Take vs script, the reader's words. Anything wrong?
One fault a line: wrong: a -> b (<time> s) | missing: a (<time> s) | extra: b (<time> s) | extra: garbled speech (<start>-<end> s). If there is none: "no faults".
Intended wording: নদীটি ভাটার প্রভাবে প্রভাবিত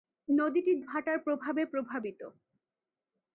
no faults